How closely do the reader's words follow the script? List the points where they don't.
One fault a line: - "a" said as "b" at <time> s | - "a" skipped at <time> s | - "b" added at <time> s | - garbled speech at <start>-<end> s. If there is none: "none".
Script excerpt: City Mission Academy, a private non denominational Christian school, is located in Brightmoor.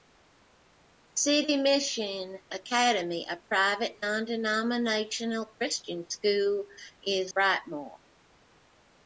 - "located in" skipped at 7.3 s